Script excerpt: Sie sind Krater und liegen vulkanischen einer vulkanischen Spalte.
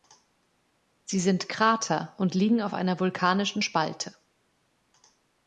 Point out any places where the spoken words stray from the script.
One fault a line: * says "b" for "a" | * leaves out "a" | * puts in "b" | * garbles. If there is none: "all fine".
* says "auf" for "vulkanischen"